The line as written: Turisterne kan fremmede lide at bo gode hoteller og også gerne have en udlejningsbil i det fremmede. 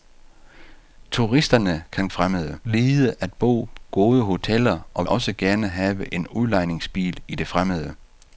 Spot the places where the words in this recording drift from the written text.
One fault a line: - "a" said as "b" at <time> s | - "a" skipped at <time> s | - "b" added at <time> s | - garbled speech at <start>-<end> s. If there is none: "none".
none